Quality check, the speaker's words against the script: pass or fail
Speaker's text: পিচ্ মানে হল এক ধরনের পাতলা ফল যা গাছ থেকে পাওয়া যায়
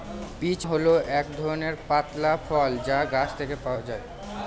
fail